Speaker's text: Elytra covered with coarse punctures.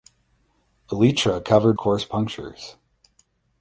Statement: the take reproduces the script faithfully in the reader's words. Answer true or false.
false